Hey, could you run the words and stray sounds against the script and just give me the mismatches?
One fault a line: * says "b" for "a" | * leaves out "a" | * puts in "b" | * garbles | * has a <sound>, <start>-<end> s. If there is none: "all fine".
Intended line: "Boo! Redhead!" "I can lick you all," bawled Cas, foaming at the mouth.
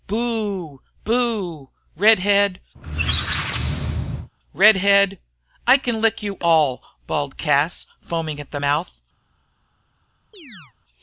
* puts in "Boo Redhead"
* has a squeak, 2.7-4.3 s
* has a chirp, 10.3-10.7 s